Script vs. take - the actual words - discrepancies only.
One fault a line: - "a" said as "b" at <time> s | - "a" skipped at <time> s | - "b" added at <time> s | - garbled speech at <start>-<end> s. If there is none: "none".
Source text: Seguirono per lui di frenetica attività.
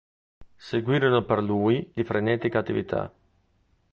none